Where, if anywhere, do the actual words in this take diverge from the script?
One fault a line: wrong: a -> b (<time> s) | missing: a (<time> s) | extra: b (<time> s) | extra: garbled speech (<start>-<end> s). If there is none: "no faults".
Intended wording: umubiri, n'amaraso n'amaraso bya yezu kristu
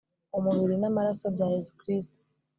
missing: n'amaraso (1.2 s)